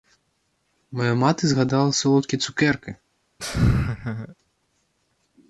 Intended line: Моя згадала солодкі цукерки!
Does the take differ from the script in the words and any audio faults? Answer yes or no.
yes